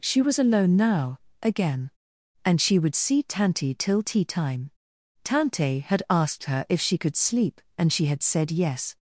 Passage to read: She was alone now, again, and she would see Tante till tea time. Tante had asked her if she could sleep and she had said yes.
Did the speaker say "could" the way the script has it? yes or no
yes